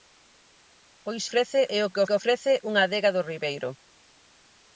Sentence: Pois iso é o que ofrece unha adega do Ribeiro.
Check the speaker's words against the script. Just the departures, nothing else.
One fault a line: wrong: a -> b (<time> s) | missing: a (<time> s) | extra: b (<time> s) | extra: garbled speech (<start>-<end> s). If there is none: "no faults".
wrong: iso -> ofrece (1.3 s)
extra: que (2.1 s)